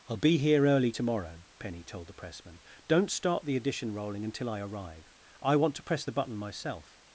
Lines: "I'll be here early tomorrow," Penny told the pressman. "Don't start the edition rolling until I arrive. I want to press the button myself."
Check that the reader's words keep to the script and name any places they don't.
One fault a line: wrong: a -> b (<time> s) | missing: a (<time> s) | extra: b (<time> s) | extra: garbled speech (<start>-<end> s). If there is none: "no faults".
no faults